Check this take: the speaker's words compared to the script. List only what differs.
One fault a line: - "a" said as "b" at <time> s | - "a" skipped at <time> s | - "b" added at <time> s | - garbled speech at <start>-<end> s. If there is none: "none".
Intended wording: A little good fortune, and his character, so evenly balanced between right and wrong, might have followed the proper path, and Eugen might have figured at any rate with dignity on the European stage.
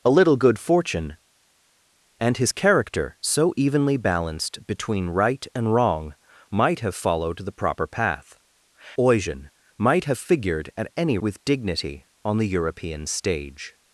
- "and" skipped at 8.4 s
- "rate" skipped at 11.2 s